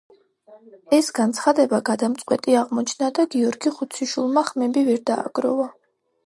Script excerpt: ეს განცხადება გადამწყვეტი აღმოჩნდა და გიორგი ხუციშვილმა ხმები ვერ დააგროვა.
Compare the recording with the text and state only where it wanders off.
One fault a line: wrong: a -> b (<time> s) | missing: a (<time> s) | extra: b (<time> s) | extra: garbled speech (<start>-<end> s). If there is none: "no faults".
no faults